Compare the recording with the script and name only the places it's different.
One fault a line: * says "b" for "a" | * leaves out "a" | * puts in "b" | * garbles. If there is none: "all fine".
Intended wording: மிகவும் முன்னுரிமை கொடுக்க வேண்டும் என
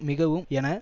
* leaves out "முன்னுரிமை கொடுக்க வேண்டும்"